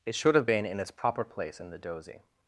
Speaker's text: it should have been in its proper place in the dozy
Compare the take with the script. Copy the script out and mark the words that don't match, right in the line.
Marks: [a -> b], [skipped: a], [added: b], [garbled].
it should have been in its proper place in the dozy